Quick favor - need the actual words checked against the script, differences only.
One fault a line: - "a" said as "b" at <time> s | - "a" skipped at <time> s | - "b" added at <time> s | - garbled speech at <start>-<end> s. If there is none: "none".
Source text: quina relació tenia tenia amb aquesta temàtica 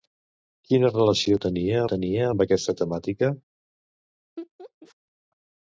none